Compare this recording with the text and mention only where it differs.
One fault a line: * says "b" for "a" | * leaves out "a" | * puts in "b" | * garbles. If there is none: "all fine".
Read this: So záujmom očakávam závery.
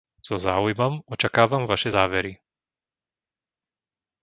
* puts in "vaše"